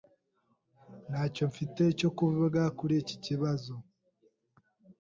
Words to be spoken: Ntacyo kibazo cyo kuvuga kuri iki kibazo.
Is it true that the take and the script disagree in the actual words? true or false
true